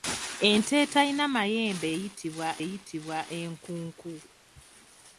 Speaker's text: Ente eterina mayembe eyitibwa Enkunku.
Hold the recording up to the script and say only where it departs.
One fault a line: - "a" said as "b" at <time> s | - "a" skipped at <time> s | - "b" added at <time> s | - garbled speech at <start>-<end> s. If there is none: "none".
- "eyitibwa" added at 2.6 s